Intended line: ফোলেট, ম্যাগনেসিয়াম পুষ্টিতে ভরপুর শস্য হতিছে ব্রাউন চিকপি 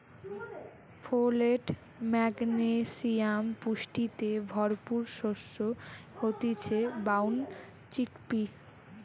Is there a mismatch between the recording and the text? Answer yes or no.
no